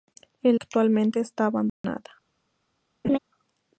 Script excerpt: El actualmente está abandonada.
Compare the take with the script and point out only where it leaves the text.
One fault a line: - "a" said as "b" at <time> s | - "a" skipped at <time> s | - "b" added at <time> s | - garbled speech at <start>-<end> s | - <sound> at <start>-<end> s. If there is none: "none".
- dropout at 1.7-1.8 s
- laugh at 3.0-3.2 s